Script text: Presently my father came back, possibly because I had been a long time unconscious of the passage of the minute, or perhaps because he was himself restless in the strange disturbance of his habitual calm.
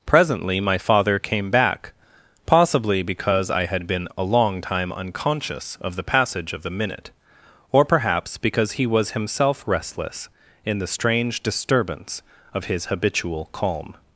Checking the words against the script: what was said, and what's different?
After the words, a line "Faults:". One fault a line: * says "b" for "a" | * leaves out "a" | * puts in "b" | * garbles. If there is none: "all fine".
Presently my father came back, possibly because I had been a long time unconscious of the passage of the minute, or perhaps because he was himself restless in the strange disturbance of his habitual calm.
Faults:
all fine